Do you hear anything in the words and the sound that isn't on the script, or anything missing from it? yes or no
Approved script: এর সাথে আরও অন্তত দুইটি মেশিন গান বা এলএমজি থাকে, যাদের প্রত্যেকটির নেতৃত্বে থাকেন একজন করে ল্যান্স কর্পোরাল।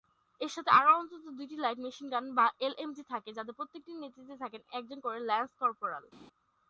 yes